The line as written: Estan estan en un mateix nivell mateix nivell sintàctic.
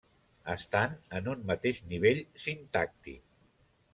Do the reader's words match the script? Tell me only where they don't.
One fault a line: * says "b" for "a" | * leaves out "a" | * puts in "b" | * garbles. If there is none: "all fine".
* leaves out "estan"
* leaves out "mateix nivell"